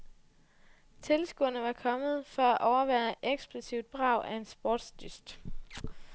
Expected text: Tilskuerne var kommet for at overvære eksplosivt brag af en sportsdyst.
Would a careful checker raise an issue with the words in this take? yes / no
no